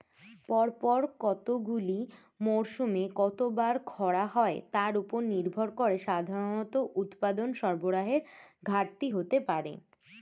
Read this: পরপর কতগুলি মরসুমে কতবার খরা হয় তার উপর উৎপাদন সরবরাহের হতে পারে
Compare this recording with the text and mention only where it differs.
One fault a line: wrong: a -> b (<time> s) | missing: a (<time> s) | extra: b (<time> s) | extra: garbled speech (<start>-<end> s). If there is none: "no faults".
extra: নির্ভর করে সাধারণত (5.3 s)
extra: ঘাটতি (8.6 s)